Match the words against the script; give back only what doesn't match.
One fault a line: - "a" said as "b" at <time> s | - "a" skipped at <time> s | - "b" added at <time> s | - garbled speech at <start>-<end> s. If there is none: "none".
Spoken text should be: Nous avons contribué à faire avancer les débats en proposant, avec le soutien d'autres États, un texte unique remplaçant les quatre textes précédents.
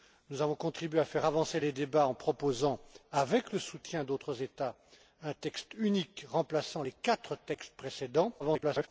- garbled speech at 8.4-8.9 s